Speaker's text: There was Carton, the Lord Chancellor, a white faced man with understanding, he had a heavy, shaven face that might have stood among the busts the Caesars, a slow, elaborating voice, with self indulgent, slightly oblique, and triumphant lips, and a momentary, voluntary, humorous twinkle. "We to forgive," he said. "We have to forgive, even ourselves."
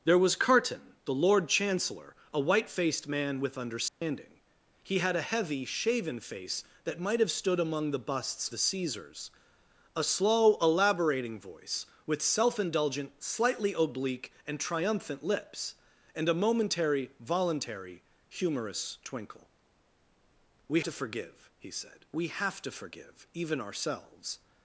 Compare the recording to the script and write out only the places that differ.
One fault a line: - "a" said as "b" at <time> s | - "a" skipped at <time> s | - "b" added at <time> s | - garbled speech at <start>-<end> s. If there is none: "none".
none